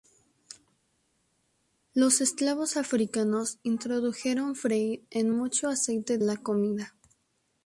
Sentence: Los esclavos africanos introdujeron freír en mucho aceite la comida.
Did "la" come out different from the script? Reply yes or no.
no